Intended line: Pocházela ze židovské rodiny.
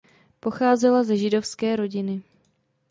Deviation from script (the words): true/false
false